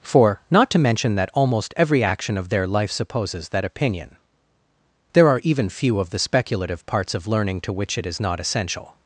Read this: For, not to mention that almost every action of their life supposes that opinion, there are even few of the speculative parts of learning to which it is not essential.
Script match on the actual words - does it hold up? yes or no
yes